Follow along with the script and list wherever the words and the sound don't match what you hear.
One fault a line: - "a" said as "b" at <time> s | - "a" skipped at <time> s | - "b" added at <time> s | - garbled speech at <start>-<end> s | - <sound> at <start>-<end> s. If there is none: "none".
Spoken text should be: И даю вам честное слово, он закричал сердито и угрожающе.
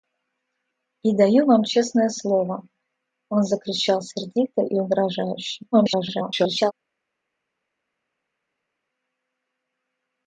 - garbled speech at 5.7-6.7 s